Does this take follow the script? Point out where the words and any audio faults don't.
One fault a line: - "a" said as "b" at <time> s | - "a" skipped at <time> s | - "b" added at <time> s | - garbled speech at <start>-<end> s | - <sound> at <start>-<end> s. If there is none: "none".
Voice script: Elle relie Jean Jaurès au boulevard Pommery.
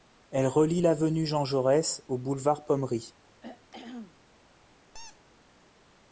- "l'avenue" added at 0.8 s
- throat clearing at 3.4-4.2 s
- squeak at 4.9-5.2 s